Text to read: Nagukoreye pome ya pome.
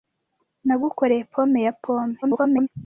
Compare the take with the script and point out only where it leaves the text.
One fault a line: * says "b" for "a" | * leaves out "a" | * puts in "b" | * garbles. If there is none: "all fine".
* garbles